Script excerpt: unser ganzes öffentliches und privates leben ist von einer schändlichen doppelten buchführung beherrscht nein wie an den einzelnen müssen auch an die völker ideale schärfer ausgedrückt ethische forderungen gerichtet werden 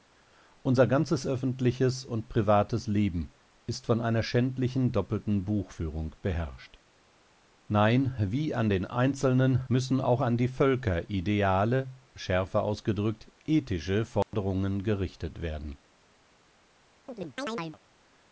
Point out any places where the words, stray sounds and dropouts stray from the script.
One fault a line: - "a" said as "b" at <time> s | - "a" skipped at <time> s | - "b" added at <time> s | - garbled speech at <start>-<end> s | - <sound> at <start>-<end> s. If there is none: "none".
- dropout at 14.2-14.3 s
- chirp at 17.1-17.8 s